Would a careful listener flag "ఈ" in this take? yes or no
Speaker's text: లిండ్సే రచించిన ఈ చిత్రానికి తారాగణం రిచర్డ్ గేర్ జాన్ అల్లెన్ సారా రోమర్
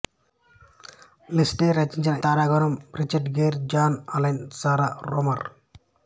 yes